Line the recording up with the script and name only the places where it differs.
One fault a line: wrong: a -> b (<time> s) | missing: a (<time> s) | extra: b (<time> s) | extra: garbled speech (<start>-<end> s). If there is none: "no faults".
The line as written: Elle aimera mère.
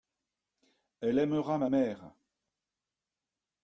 extra: ma (1.6 s)